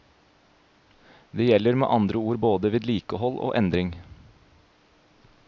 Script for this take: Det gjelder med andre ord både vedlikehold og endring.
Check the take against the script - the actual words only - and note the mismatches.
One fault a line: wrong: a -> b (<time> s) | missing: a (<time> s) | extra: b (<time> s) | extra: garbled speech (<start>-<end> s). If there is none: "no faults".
no faults